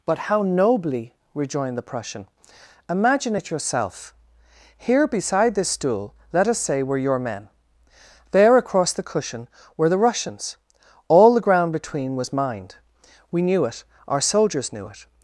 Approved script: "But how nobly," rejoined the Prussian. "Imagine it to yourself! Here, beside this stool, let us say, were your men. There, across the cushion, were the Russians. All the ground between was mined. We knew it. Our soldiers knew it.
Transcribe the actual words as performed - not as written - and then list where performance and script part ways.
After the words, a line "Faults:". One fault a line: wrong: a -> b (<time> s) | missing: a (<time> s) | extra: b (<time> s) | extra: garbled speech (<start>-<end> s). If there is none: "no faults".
"But how nobly," rejoined the Prussian. "Imagine it yourself! Here, beside this stool, let us say, were your men. There, across the cushion, were the Russians. All the ground between was mined. We knew it. Our soldiers knew it.
Faults:
missing: to (3.5 s)